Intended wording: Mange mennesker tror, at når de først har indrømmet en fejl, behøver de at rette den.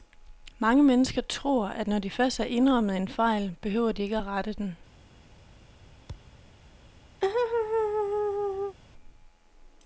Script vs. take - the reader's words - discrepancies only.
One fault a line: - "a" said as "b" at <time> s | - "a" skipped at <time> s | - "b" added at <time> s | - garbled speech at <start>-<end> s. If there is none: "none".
- "ikke" added at 4.0 s